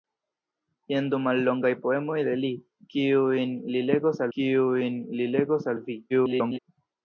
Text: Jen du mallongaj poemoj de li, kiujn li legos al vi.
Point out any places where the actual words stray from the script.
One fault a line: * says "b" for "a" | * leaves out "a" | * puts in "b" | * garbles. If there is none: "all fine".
* puts in "kiujn li legos"
* garbles